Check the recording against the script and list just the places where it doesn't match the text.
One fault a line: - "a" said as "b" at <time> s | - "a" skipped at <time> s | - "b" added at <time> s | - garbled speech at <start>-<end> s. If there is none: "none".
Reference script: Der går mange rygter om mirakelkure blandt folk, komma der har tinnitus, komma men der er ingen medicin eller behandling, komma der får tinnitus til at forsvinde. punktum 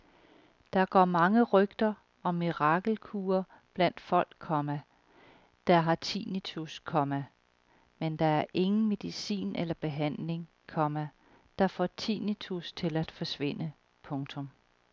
none